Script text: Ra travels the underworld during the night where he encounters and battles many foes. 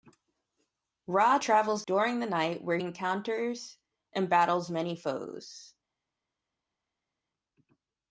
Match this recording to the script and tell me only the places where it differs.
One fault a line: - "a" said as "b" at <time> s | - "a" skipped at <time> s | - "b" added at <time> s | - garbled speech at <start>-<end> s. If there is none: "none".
- "the underworld" skipped at 1.8 s
- "he" skipped at 2.8 s